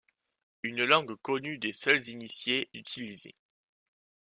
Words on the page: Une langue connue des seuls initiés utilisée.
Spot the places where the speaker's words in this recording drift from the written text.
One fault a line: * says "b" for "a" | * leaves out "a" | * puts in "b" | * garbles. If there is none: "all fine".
all fine